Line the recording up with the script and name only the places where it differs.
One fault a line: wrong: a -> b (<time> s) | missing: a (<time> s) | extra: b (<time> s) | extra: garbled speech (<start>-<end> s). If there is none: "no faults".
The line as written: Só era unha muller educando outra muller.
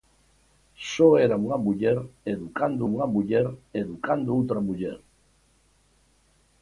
extra: unha muller educando (2.9 s)